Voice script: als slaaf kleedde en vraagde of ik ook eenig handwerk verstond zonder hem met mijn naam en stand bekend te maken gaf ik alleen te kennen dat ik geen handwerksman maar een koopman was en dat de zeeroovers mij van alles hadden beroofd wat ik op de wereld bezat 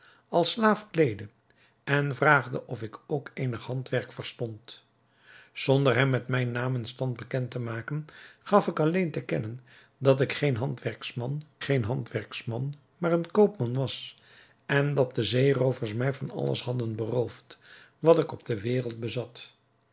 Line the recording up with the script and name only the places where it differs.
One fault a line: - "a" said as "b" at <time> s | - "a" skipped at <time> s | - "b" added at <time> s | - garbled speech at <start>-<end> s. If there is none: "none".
- "geen handwerksman" added at 11.6 s